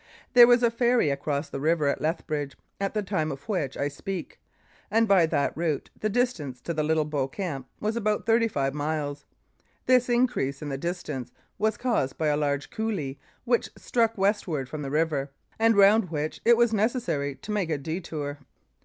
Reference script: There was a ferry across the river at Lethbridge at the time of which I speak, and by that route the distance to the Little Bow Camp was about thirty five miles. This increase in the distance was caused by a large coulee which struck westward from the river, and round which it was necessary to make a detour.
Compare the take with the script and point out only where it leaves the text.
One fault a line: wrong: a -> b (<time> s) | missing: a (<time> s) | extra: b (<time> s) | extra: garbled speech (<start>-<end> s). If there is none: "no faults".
no faults